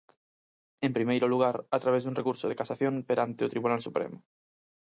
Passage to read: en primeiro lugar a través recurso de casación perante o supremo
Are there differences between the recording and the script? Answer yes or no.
yes